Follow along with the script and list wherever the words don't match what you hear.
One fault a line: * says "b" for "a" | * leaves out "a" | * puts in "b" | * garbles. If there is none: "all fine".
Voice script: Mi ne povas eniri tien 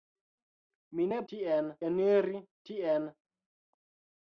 * says "tien" for "povas"